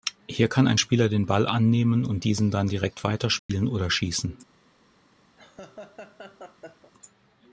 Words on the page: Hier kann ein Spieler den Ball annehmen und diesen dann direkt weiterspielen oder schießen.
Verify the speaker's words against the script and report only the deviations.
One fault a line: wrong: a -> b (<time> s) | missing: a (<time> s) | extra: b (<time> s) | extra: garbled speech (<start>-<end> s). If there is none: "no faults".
no faults